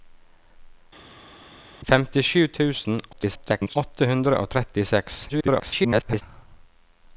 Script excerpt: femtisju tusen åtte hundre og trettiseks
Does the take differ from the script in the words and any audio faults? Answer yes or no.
yes